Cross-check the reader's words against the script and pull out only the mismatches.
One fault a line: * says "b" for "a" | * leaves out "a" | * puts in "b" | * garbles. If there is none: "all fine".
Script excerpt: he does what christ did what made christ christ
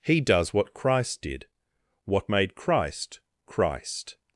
all fine